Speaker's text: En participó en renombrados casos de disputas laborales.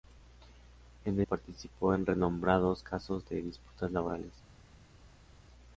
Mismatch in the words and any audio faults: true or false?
false